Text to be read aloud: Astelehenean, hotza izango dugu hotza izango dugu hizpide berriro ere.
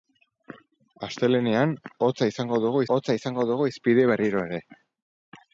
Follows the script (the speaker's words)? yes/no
yes